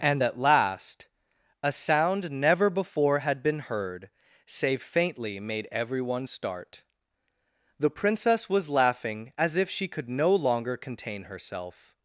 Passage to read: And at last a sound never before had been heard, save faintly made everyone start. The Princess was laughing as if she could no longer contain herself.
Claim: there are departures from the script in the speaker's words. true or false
false